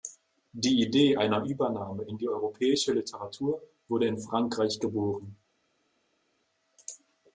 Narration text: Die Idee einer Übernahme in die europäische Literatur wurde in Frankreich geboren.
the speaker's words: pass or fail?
pass